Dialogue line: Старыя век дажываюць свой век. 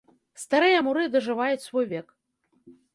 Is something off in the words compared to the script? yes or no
yes